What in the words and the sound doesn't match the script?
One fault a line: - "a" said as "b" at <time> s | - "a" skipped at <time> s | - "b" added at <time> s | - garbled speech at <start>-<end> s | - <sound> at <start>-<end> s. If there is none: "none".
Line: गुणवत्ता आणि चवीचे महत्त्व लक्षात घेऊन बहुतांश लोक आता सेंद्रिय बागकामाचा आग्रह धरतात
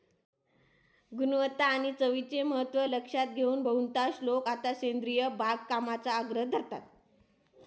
none